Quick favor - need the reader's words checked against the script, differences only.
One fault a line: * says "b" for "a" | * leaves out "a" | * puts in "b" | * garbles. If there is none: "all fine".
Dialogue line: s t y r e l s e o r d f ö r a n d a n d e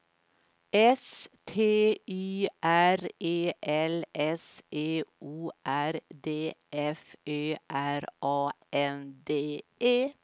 * leaves out "a n d"